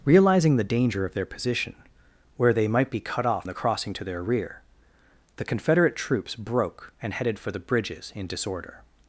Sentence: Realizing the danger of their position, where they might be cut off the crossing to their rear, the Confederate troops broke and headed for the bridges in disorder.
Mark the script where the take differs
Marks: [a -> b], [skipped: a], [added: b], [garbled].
Realizing the danger of their position, where they might be cut off the crossing to their rear, the Confederate troops broke and headed for the bridges in disorder.